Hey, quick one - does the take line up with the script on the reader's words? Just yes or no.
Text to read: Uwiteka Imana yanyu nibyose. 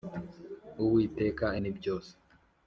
no